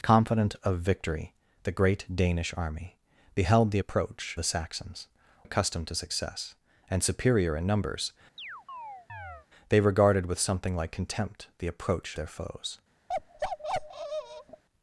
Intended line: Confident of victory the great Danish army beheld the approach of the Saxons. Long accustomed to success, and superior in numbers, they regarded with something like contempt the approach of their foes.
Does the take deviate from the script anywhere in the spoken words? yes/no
yes